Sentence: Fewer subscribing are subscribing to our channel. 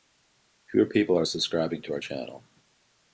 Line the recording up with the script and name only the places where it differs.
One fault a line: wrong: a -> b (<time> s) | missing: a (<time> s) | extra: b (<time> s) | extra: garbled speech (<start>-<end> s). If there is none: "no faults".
wrong: subscribing -> people (0.9 s)